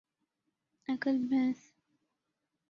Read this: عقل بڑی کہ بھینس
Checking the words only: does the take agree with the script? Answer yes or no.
no